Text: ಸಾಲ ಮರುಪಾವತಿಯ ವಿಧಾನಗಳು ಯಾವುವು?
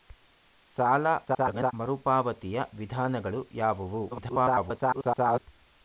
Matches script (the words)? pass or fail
fail